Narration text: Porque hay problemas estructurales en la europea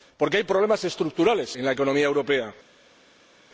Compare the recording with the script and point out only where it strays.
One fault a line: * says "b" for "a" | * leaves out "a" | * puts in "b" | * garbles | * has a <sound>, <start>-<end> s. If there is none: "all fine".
* puts in "economía"